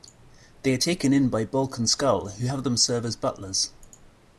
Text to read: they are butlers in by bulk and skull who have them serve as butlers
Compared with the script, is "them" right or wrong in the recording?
right